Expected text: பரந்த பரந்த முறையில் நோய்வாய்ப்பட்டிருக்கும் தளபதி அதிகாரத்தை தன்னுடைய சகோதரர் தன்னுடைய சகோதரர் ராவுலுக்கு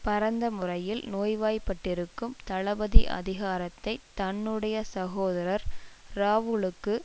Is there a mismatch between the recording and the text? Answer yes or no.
yes